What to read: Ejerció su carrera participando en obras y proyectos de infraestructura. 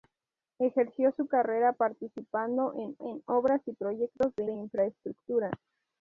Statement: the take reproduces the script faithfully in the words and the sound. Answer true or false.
false